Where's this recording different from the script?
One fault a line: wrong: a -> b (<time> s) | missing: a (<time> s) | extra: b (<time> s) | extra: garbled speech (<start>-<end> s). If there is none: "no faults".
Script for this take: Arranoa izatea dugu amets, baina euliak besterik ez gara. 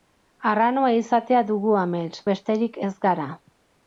missing: baina euliak (2.2 s)